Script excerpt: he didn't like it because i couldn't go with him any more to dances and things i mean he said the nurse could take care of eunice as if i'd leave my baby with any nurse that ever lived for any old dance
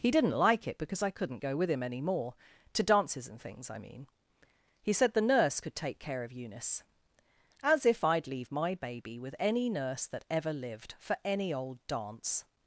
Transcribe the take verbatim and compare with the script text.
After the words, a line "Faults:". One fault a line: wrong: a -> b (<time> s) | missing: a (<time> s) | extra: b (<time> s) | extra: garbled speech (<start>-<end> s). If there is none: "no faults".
he didn't like it because i couldn't go with him any more to dances and things i mean he said the nurse could take care of eunice as if i'd leave my baby with any nurse that ever lived for any old dance
Faults:
no faults